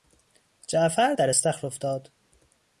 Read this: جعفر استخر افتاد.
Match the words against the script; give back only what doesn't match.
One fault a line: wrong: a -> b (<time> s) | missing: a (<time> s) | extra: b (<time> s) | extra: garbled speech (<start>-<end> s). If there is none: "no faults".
extra: در (1.1 s)